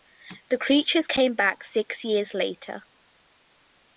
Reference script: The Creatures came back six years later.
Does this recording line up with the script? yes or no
yes